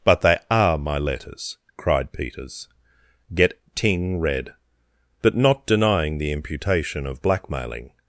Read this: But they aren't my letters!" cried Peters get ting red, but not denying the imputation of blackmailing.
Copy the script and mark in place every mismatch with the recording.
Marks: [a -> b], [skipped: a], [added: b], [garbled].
But they [aren't -> are] my letters!" cried Peters get ting red, but not denying the imputation of blackmailing.